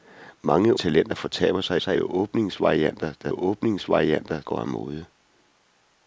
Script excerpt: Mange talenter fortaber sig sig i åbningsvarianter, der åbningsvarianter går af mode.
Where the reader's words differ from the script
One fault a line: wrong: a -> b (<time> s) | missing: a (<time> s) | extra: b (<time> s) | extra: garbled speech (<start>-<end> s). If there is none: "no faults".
no faults